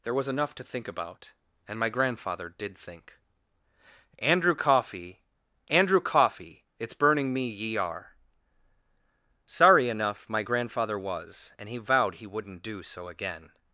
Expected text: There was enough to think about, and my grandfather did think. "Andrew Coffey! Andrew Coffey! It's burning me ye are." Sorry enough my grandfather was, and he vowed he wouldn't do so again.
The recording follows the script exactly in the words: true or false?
true